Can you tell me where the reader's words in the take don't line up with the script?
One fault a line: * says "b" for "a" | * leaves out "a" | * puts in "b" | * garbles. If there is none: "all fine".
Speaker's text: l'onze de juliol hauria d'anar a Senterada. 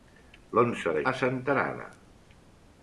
* leaves out "juliol hauria d'anar"